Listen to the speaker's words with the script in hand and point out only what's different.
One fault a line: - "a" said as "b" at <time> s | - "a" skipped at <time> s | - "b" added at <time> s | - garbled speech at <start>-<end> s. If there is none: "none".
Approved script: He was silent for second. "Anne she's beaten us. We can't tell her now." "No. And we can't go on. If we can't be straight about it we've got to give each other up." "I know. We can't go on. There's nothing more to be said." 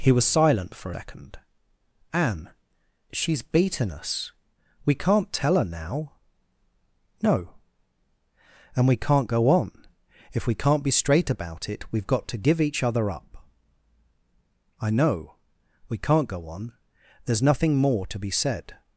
none